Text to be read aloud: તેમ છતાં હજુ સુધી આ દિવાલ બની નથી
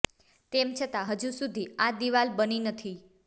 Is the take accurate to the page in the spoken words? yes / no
yes